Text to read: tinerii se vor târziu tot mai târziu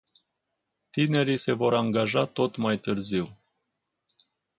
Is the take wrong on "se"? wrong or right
right